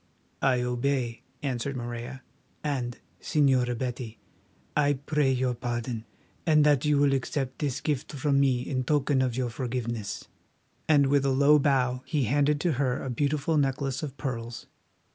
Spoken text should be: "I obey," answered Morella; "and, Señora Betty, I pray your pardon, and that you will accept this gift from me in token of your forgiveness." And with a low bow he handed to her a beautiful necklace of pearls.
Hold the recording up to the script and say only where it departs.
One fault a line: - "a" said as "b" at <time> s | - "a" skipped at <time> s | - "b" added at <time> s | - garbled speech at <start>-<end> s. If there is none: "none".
none